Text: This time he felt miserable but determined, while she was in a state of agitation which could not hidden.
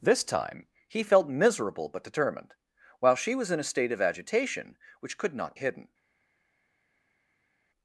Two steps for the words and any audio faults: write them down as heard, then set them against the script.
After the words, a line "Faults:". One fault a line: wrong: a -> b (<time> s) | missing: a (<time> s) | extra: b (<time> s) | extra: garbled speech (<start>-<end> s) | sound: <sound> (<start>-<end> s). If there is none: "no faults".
This time he felt miserable but determined, while she was in a state of agitation which could not hidden.
Faults:
no faults